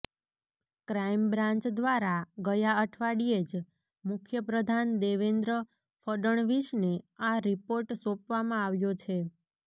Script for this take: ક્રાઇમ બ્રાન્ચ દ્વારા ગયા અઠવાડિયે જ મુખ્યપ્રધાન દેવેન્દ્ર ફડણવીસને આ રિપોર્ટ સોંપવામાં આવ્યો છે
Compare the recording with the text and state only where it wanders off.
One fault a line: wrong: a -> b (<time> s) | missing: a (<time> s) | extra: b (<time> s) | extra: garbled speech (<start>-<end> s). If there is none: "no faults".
no faults